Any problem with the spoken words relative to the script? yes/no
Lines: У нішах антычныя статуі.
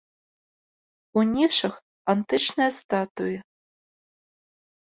no